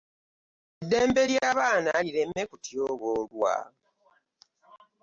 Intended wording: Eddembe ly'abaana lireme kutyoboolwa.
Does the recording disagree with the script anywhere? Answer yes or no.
no